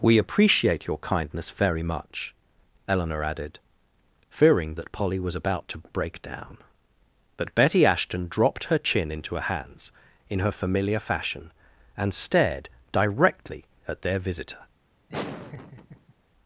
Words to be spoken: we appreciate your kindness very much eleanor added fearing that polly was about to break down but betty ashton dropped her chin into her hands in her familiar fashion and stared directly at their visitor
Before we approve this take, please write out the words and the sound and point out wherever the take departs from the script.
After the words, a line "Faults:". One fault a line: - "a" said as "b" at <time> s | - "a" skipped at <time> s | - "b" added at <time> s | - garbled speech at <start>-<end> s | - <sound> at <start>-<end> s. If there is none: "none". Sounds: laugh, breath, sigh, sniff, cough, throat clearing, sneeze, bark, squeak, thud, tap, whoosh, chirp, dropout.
we appreciate your kindness very much eleanor added fearing that polly was about to break down but betty ashton dropped her chin into her hands in her familiar fashion and stared directly at their visitor
Faults:
- laugh at 15.1-16.1 s